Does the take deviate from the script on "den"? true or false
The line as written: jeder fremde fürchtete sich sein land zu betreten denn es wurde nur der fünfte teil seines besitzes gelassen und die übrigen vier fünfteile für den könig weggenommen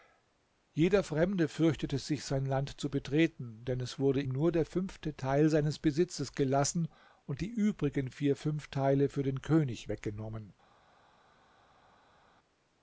false